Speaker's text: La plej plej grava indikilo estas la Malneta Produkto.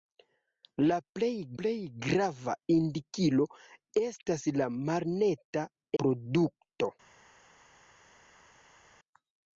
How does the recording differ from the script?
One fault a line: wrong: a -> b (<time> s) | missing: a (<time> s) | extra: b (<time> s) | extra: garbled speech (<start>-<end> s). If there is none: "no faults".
no faults